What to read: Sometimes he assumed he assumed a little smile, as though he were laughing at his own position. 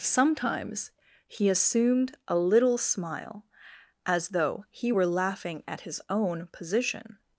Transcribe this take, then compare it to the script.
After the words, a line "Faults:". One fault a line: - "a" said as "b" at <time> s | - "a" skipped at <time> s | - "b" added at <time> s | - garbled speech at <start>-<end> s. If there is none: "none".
Sometimes he assumed a little smile, as though he were laughing at his own position.
Faults:
- "he assumed" skipped at 2.2 s